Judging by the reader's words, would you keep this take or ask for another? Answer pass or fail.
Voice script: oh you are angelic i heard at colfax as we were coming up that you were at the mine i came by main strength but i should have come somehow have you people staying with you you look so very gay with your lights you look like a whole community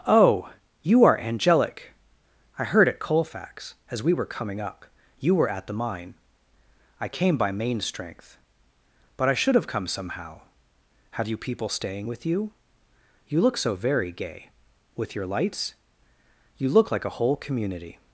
fail